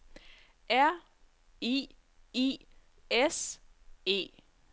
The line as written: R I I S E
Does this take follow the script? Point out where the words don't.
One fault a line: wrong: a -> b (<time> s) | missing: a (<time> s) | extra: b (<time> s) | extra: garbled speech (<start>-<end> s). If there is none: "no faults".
no faults